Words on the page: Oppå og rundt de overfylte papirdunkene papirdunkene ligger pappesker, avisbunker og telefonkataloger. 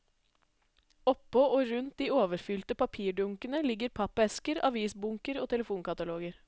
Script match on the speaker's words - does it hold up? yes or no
no